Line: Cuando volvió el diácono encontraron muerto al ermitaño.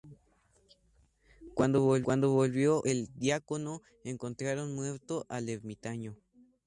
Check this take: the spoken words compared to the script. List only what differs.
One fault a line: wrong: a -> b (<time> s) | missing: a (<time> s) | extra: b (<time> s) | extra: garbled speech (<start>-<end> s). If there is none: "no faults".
no faults